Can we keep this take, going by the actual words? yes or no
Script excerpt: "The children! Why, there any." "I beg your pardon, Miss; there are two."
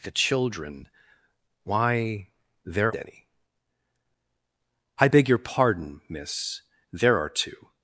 yes